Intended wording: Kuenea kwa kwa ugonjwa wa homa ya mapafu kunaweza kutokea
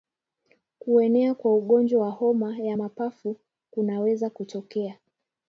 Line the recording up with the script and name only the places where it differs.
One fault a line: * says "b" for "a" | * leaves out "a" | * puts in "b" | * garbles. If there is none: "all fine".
* leaves out "kwa"